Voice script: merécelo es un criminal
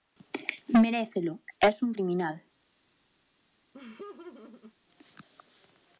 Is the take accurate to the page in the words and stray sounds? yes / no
no